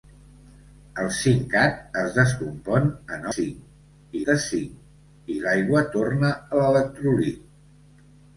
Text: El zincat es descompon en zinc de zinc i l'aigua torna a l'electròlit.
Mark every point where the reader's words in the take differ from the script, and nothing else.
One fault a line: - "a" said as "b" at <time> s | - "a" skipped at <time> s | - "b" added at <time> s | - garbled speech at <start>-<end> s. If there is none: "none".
none